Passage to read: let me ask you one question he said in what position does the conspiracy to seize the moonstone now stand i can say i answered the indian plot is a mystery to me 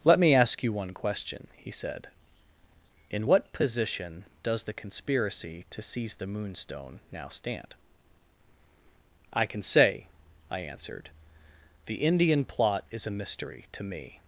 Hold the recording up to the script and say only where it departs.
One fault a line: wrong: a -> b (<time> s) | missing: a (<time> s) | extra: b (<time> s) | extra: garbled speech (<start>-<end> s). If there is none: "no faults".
no faults